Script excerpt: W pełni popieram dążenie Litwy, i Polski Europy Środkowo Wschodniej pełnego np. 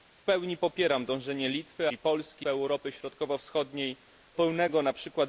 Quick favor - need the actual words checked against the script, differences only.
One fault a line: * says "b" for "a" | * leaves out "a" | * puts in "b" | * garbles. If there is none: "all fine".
all fine